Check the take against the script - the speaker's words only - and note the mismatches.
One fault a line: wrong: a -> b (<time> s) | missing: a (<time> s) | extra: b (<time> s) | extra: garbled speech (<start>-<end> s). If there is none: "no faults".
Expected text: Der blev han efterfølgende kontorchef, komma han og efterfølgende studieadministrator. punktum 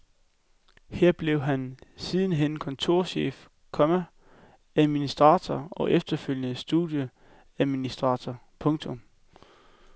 wrong: Der -> Her (0.9 s)
wrong: efterfølgende -> sidenhen (1.9 s)
wrong: han -> administrator (4.8 s)